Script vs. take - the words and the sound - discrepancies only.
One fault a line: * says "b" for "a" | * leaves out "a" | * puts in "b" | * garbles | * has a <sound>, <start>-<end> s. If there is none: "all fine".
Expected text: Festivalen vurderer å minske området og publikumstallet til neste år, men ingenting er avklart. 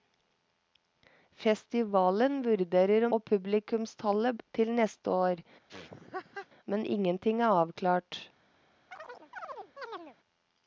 * leaves out "minske området"
* has a laugh, 5.7-6.5 s
* has a chirp, 8.9-10.2 s